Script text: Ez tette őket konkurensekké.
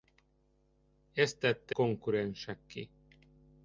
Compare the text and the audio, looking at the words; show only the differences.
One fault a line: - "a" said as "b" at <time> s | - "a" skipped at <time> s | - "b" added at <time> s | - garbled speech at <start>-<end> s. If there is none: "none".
- "őket" skipped at 1.8 s